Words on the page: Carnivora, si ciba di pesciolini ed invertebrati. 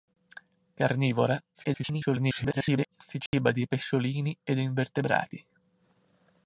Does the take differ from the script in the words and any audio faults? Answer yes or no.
yes